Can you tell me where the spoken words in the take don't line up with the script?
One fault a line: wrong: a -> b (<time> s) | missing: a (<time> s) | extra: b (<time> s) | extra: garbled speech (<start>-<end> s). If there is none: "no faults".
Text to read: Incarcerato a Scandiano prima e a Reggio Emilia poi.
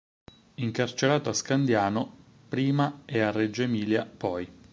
no faults